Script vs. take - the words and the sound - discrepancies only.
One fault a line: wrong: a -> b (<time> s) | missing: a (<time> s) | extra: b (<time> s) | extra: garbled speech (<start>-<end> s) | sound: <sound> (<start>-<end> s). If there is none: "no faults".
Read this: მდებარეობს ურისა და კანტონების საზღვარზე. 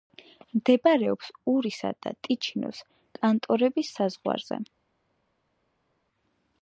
extra: ტიჩინოს (2.3 s)